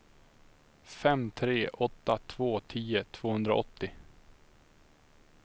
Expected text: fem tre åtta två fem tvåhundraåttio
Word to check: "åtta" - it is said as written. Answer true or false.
true